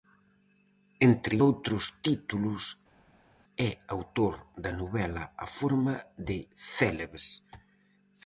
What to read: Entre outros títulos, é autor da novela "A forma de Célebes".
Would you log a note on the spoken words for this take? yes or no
no